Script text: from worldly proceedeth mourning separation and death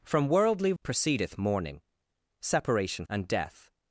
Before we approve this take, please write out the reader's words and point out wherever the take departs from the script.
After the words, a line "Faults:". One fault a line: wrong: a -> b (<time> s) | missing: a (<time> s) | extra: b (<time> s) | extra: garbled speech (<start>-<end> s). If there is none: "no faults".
from worldly proceedeth mourning separation and death
Faults:
no faults